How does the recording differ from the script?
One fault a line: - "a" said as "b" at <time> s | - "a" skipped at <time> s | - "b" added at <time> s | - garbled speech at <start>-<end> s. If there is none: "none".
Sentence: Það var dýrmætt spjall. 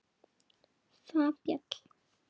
- "var dýrmætt" skipped at 1.3 s